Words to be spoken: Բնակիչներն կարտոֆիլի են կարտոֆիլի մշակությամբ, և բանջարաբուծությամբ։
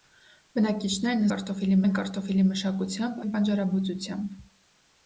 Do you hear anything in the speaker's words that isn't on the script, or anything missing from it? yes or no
no